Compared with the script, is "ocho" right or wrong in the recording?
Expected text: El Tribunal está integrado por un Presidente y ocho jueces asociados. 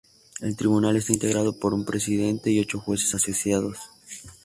right